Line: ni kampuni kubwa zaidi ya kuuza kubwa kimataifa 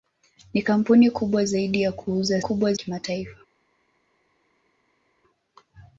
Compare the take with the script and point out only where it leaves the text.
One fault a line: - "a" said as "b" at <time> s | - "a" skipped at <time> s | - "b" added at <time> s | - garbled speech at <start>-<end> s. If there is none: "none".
none